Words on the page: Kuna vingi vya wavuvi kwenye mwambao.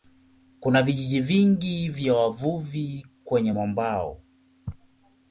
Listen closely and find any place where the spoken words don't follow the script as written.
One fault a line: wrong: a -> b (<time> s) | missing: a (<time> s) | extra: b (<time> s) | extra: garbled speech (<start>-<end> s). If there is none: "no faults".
extra: vijiji (0.8 s)